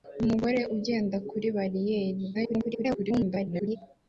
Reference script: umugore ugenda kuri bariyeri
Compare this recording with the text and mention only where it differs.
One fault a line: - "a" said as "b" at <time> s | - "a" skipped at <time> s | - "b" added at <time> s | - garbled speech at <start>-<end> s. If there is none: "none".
- garbled speech at 2.3-3.8 s